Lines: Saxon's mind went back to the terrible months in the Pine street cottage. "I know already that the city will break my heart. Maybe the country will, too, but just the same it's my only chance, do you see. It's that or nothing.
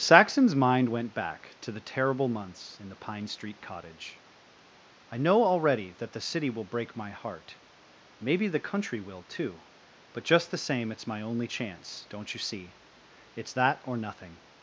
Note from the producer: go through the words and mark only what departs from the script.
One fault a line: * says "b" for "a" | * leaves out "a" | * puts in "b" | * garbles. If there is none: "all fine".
* says "don't" for "do"